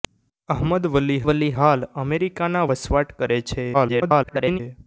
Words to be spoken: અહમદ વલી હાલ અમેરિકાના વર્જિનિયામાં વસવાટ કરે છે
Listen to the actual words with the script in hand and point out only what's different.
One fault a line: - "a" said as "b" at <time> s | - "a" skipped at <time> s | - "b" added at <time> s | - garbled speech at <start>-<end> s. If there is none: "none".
- "વલી" added at 1.3 s
- "વર્જિનિયામાં" skipped at 2.7 s
- garbled speech at 3.7-4.6 s